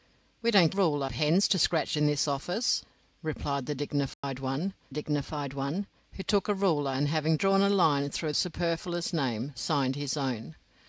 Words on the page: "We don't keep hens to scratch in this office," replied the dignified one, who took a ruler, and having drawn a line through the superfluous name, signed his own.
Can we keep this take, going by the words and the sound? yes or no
no